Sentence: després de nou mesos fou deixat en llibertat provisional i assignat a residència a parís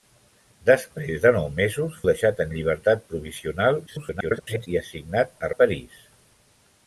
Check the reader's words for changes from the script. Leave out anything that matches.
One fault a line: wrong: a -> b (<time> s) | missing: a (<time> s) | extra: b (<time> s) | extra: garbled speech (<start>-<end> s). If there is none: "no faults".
missing: fou (2.0 s)
extra: garbled speech (3.9-4.7 s)
missing: residència (5.5 s)